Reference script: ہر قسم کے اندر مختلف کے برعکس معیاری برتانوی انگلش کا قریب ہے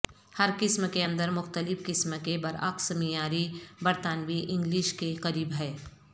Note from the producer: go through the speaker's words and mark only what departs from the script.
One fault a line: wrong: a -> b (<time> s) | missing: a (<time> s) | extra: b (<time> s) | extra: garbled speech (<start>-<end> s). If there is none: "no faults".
extra: قسم (1.9 s)
wrong: کا -> کے (4.9 s)